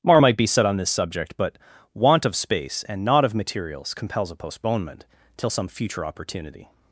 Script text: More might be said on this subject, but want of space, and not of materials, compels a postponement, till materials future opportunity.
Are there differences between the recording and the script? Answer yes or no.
yes